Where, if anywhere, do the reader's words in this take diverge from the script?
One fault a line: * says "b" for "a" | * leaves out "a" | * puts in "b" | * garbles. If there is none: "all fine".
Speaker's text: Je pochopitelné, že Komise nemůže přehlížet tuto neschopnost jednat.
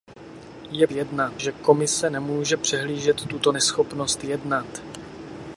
* says "jednat" for "pochopitelné"